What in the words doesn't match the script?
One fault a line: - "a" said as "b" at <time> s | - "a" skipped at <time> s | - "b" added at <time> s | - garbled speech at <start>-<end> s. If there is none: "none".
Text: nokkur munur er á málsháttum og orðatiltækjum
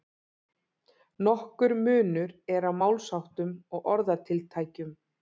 none